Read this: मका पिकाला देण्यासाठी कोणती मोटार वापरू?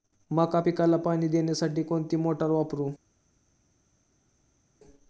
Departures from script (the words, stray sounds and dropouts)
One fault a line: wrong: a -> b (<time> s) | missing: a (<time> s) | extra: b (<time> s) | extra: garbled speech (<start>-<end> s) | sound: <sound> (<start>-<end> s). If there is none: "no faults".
extra: पाणी (1.0 s)